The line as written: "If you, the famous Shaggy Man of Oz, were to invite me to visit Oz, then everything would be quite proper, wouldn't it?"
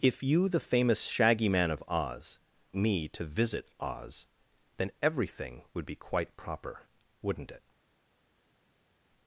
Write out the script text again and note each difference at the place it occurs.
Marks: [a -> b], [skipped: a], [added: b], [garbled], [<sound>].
"If you, the famous Shaggy Man of Oz, [skipped: were to invite] me to visit Oz, then everything would be quite proper, wouldn't it?"